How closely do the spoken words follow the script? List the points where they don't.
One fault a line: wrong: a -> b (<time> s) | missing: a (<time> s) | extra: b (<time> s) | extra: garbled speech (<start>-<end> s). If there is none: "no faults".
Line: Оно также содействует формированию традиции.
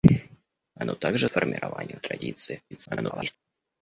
missing: содействует (1.3 s)
extra: garbled speech (2.7-3.4 s)